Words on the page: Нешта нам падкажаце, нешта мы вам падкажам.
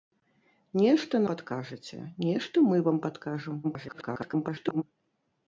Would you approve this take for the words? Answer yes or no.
no